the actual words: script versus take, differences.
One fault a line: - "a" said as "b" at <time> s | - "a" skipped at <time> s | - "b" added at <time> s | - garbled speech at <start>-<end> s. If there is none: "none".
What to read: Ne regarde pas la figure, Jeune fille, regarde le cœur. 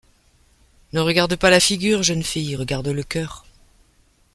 none